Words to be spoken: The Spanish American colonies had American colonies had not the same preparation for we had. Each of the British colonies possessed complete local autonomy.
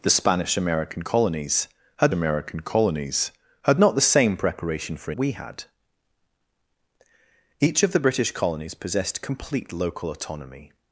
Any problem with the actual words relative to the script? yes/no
no